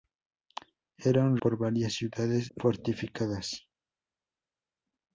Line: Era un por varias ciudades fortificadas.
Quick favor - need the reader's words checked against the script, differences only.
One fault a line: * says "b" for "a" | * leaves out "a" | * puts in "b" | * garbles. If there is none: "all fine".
all fine